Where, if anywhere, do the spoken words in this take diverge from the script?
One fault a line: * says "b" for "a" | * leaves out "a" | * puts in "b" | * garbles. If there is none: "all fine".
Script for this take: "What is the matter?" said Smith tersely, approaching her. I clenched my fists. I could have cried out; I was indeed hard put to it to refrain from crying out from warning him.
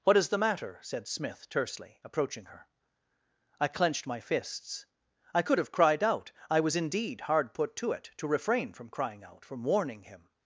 all fine